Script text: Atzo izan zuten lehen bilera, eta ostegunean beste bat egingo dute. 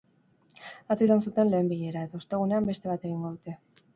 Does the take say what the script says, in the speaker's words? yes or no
yes